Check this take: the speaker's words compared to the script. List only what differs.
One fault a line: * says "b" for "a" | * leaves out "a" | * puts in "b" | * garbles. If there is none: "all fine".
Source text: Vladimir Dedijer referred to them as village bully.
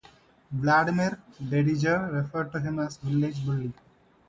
* says "him" for "them"